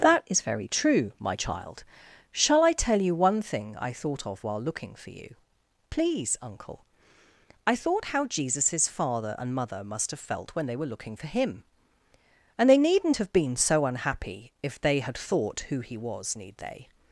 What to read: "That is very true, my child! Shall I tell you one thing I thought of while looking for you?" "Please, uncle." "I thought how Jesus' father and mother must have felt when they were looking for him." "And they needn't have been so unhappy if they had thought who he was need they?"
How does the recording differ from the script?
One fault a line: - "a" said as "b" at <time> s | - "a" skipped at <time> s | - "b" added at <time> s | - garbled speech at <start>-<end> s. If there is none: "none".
none